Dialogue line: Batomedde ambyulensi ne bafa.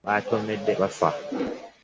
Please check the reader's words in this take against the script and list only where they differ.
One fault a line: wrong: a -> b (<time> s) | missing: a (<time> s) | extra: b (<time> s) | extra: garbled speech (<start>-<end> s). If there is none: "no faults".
missing: ambyulensi ne (0.7 s)